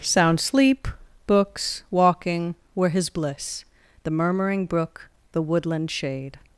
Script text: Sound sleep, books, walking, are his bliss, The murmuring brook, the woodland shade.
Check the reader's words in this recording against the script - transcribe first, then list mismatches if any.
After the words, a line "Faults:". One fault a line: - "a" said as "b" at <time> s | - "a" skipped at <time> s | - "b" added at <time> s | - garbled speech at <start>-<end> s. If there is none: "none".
Sound sleep, books, walking, were his bliss, The murmuring brook, the woodland shade.
Faults:
- "are" said as "were" at 2.7 s